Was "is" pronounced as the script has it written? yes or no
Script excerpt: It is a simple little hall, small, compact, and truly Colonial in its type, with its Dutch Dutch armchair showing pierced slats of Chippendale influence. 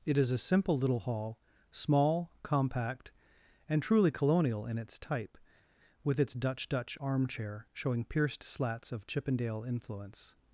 yes